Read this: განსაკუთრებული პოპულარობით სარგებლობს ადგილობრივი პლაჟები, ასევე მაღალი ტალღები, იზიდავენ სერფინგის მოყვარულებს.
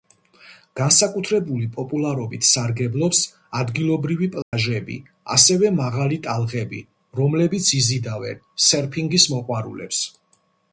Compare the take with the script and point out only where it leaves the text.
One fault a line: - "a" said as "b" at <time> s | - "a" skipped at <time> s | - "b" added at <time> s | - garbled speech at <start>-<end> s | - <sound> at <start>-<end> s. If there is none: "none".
- dropout at 4.4-4.5 s
- "რომლებიც" added at 7.2 s